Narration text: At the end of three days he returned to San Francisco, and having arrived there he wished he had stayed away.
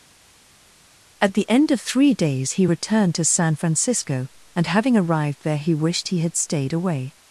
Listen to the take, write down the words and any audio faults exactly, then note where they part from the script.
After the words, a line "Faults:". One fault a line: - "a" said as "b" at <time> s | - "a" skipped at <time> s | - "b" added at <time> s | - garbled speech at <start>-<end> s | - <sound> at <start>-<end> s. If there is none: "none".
At the end of three days he returned to San Francisco, and having arrived there he wished he had stayed away.
Faults:
none